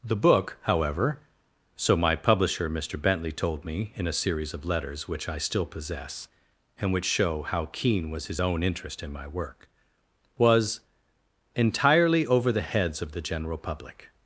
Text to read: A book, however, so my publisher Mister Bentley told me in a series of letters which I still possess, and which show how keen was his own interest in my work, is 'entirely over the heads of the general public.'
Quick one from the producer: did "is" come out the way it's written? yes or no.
no